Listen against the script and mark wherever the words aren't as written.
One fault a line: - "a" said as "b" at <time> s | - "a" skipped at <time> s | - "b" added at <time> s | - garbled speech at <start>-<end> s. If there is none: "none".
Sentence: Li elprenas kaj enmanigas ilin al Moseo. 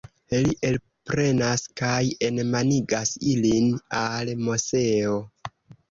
none